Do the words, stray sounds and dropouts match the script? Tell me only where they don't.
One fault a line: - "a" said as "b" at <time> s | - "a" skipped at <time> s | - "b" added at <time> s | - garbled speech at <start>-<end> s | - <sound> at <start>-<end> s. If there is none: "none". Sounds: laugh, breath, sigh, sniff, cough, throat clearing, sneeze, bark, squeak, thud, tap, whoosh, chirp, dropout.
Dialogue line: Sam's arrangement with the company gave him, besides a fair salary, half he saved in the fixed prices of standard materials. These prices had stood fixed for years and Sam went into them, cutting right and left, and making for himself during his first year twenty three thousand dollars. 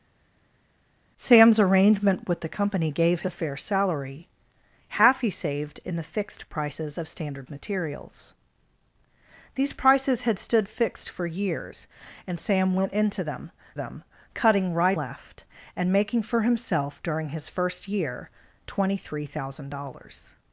- "him besides" skipped at 3.2 s
- "them" added at 13.8 s
- "and" skipped at 15.0 s